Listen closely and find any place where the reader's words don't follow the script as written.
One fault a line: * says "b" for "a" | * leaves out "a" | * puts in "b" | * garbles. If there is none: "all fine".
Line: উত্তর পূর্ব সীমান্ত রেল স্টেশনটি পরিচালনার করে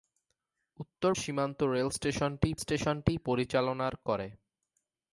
* leaves out "পূর্ব"
* puts in "স্টেশনটি"